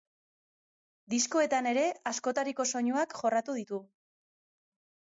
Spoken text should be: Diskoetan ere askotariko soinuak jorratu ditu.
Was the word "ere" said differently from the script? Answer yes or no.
no